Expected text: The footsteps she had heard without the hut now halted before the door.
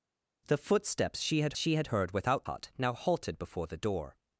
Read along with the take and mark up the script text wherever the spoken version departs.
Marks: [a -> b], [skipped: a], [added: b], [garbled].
The footsteps she had [added: she had] heard without [skipped: the] hut now halted before the door.